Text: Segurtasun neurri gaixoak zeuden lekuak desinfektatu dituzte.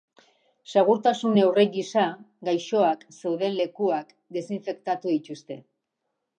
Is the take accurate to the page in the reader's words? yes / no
no